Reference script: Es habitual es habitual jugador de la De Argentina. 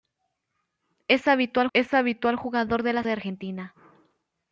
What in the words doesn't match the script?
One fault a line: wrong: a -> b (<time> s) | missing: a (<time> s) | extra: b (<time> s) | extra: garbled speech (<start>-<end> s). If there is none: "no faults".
no faults